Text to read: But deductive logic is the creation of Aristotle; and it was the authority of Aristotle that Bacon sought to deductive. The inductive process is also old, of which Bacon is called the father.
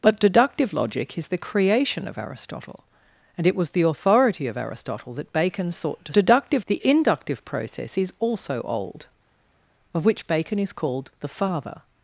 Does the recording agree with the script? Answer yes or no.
yes